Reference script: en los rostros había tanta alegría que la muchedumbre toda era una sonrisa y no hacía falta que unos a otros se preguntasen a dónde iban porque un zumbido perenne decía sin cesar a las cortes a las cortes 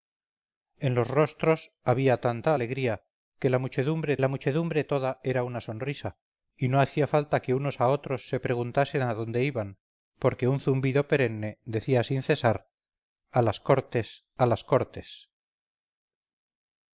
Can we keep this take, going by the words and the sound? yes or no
no